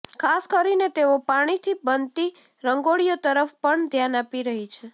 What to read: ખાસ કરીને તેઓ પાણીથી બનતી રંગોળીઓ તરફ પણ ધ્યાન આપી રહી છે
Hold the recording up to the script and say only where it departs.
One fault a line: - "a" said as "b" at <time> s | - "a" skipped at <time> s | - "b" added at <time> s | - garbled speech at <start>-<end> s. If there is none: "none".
none